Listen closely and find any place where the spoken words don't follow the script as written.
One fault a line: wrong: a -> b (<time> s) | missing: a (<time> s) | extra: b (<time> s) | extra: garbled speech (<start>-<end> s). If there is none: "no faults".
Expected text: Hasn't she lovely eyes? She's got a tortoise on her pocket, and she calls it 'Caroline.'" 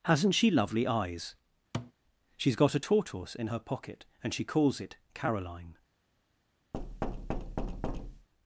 wrong: on -> in (3.3 s)